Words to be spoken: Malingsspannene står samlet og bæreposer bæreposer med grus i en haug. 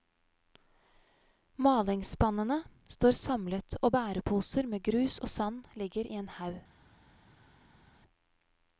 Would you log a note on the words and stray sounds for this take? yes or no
yes